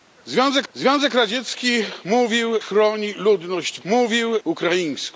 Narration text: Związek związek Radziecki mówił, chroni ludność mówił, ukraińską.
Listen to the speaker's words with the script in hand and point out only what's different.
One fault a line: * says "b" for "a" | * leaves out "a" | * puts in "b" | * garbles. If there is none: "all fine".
all fine